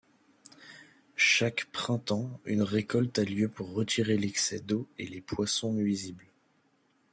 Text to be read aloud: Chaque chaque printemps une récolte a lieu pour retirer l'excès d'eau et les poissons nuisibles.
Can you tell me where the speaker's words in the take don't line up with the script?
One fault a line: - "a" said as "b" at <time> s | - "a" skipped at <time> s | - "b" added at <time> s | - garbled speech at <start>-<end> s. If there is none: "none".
- "chaque" skipped at 1.6 s